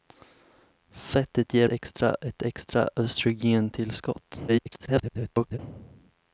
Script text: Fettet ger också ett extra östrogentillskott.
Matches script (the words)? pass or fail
fail